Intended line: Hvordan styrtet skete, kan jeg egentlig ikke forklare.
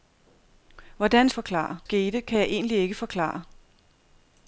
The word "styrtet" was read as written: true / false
false